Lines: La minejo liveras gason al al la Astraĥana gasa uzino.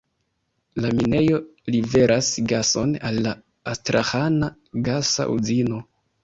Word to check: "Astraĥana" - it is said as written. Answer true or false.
true